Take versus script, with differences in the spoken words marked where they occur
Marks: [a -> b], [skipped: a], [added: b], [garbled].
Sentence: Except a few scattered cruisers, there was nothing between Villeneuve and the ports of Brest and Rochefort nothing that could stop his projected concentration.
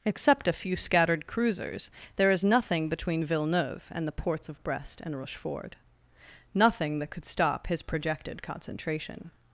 Except a few scattered cruisers, there [was -> is] nothing between Villeneuve and the ports of Brest and Rochefort nothing that could stop his projected concentration.